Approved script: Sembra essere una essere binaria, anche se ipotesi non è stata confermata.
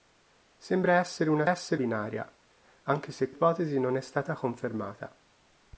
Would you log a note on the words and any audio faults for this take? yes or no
no